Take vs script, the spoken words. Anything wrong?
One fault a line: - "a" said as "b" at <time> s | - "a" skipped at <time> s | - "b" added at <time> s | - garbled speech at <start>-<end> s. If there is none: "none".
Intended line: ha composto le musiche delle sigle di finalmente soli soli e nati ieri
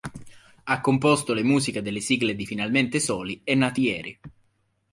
- "soli" skipped at 3.4 s